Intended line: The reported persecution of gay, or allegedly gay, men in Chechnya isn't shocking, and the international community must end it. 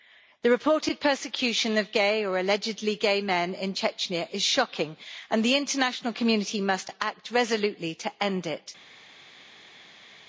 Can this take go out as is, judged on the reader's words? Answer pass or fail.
fail